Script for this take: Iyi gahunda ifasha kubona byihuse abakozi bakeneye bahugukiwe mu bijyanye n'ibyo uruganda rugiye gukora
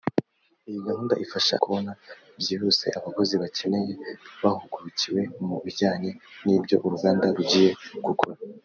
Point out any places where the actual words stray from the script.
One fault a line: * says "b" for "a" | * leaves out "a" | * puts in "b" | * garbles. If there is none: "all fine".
all fine